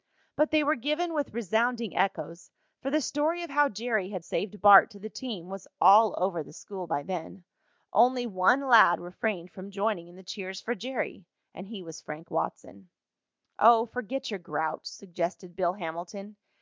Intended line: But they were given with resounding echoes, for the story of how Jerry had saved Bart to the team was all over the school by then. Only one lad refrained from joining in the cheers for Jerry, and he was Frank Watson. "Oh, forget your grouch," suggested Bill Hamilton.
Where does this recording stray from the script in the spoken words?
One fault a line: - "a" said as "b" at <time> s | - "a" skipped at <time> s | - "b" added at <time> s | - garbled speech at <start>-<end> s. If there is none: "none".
none